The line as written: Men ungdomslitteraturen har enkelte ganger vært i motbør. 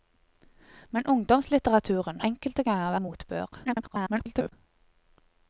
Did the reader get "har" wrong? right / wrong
wrong